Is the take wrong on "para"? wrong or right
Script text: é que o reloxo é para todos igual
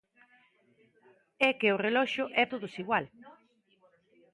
wrong